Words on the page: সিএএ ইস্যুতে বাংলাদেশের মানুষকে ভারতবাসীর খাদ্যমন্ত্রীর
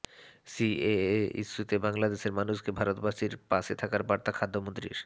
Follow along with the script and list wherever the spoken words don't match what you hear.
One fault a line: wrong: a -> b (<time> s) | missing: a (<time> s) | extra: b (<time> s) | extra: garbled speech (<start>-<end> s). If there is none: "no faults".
extra: পাশে থাকার বার্তা (3.5 s)